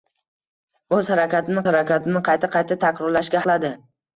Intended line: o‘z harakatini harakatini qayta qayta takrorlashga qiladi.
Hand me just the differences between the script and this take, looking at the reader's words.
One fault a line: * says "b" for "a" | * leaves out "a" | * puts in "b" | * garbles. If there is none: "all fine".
all fine